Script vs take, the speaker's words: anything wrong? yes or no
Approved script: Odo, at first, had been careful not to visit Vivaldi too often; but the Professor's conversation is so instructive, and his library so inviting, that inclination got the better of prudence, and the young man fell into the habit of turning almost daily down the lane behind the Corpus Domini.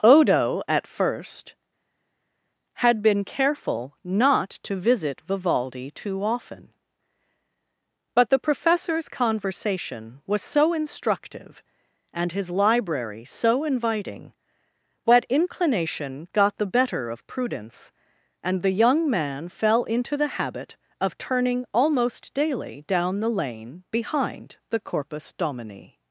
yes